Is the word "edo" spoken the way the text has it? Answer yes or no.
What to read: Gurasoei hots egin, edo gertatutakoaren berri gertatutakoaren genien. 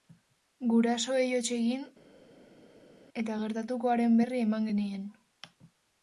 no